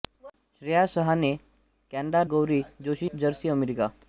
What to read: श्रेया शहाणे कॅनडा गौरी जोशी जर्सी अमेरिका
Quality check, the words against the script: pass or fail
pass